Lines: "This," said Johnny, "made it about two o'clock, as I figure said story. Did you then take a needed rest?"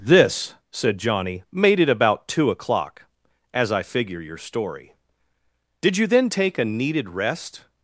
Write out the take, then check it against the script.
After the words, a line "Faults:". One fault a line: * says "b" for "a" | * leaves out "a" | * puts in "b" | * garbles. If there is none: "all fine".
"This," said Johnny, "made it about two o'clock, as I figure your story. Did you then take a needed rest?"
Faults:
* says "your" for "said"